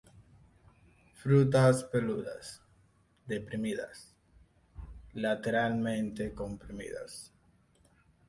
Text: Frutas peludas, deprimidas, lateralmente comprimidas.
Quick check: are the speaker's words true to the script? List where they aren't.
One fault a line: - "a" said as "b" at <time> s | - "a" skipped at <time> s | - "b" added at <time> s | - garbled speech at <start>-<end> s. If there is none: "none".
none